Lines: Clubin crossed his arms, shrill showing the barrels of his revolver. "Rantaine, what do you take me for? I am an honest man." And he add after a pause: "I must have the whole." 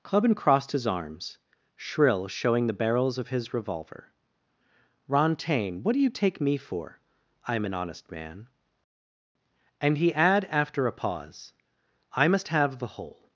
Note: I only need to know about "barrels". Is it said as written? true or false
true